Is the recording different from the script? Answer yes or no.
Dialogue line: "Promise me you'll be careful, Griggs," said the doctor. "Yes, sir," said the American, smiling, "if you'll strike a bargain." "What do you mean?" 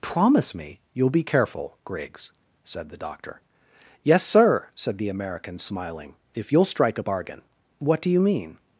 no